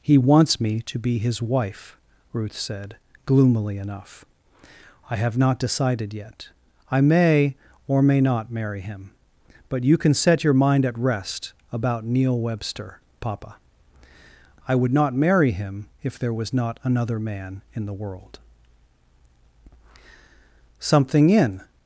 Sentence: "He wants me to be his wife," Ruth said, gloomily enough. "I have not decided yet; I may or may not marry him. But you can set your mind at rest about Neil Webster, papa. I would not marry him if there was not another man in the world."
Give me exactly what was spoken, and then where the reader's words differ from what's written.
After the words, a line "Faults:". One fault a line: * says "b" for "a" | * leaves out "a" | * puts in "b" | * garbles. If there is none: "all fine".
"He wants me to be his wife," Ruth said, gloomily enough. "I have not decided yet; I may or may not marry him. But you can set your mind at rest about Neil Webster, papa. I would not marry him if there was not another man in the world." Something in
Faults:
* puts in "Something in"